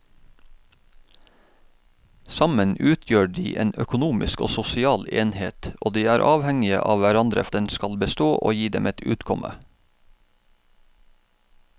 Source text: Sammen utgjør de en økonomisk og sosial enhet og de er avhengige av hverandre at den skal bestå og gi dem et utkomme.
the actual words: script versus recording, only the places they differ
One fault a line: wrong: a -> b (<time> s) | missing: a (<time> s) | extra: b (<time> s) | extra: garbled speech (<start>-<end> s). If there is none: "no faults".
no faults